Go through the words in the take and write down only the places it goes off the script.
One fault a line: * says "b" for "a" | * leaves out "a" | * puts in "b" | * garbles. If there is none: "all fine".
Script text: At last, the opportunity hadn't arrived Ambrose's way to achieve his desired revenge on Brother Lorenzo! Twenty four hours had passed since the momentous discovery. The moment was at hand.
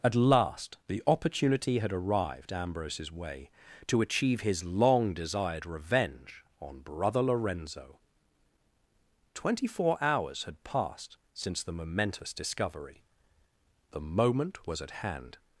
* says "had" for "hadn't"
* puts in "long"